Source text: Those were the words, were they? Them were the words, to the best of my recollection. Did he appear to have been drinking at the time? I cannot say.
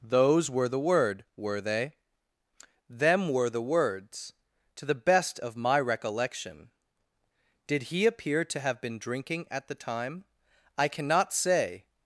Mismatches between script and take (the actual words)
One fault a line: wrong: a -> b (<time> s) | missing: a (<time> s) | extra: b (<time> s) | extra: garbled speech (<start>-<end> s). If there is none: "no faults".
wrong: words -> word (0.8 s)